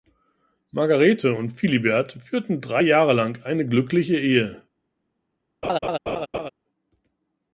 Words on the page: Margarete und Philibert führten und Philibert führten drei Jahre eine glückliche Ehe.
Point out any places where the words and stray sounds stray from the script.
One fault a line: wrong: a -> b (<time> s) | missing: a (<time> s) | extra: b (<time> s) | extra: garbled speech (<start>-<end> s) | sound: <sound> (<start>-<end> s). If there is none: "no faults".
missing: und Philibert führten (2.6 s)
extra: lang (3.1 s)
sound: laugh (5.6-6.5 s)